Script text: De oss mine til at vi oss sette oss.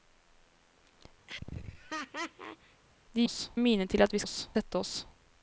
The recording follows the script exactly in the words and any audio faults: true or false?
false